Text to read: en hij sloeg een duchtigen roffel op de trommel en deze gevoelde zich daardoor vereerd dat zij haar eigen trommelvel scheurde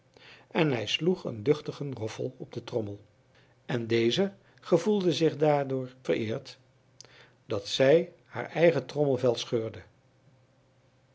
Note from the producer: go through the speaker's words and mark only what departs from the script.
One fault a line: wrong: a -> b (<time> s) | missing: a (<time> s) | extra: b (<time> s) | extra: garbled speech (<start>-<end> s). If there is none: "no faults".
no faults